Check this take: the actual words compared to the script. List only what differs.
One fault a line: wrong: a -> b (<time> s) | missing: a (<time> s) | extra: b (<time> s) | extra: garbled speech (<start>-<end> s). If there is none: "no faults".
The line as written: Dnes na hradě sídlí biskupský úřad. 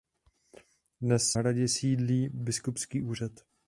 missing: na (1.4 s)